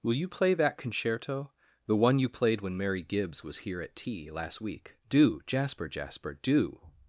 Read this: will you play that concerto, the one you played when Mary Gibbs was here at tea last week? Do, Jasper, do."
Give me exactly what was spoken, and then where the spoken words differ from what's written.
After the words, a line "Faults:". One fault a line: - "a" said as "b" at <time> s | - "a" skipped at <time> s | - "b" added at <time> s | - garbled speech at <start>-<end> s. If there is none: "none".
will you play that concerto, the one you played when Mary Gibbs was here at tea last week? Do, Jasper Jasper, do."
Faults:
- "Jasper" added at 5.9 s